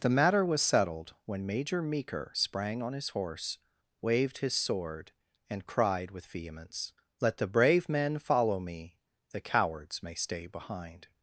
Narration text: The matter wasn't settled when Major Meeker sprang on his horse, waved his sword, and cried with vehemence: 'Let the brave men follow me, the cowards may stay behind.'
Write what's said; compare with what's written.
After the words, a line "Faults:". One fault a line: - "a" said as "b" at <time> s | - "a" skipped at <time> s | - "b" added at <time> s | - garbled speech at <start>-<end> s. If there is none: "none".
The matter was settled when Major Meeker sprang on his horse, waved his sword, and cried with vehemence: 'Let the brave men follow me, the cowards may stay behind.'
Faults:
- "wasn't" said as "was" at 0.4 s